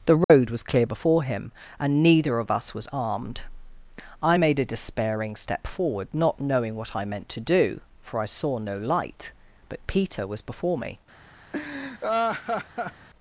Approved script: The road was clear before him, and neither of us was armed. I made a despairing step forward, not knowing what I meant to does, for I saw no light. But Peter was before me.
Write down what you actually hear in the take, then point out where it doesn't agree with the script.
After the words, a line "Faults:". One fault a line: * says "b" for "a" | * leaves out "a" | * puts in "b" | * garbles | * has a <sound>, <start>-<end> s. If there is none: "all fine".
The road was clear before him, and neither of us was armed. I made a despairing step forward, not knowing what I meant to do, for I saw no light. But Peter was before me.
Faults:
* has a dropout, 0.2-0.3 s
* says "do" for "does"
* has a laugh, 11.5-13.1 s